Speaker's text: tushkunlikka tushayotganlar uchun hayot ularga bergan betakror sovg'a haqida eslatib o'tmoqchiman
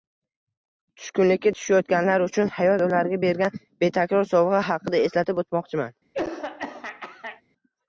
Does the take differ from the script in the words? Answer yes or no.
no